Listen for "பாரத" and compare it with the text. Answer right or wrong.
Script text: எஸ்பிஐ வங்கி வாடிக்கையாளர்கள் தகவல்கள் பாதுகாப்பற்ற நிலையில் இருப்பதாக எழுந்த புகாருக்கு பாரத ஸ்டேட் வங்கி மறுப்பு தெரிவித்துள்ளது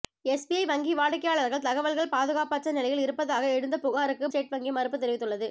wrong